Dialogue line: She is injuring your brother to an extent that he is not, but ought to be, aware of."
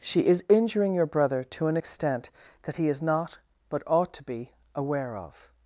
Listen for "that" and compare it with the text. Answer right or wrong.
right